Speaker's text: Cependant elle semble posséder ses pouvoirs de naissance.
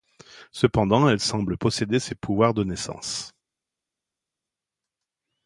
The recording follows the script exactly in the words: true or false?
true